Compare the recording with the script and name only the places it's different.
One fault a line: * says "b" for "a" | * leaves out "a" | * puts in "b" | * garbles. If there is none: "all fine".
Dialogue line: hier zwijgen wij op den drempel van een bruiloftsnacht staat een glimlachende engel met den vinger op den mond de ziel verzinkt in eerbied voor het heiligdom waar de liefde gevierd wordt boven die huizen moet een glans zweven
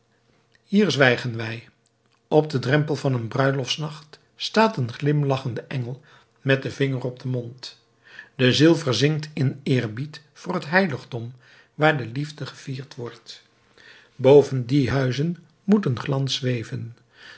all fine